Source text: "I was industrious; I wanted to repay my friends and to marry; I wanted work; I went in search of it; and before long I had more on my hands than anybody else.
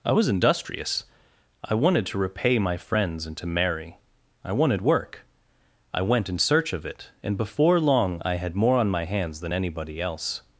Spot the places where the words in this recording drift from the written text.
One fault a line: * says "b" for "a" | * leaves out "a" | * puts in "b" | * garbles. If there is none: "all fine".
all fine